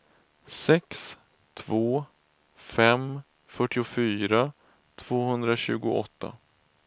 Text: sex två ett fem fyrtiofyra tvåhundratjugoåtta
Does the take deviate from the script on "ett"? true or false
true